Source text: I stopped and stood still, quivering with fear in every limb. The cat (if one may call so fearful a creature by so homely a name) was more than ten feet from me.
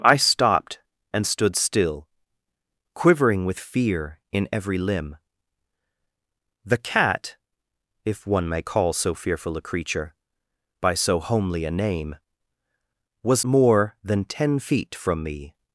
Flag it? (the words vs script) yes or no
no